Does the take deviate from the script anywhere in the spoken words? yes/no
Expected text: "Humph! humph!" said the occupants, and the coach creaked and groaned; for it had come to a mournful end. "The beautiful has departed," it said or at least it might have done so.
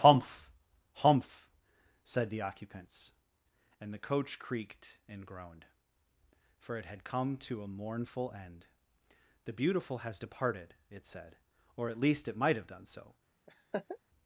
no